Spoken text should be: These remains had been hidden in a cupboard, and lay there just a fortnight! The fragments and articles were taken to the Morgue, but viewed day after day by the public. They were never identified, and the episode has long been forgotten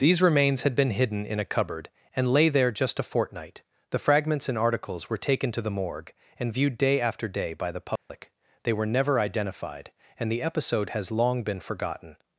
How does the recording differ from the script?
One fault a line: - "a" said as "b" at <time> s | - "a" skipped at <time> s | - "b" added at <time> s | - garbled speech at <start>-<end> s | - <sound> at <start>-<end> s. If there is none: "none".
- "but" said as "and" at 6.4 s
- dropout at 8.0-8.1 s